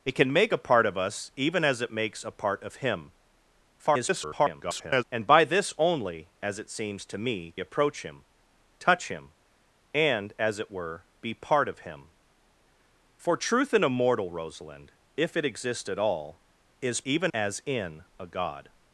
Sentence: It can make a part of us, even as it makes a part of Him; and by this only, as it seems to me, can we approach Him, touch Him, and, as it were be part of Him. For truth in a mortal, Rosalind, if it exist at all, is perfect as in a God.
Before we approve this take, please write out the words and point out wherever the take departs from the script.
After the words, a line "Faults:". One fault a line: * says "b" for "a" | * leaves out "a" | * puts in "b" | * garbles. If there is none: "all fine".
It can make a part of us, even as it makes a part of Him; [garbled] and by this only, as it seems to me, approach Him, touch Him, and, as it were be part of Him. For truth in a mortal, Rosalind, if it exist at all, is even as in a God.
Faults:
* garbles
* leaves out "can we"
* says "even" for "perfect"